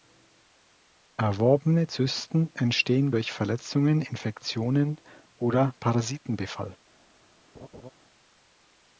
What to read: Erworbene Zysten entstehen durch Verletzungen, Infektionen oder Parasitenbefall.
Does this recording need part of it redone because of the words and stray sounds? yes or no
yes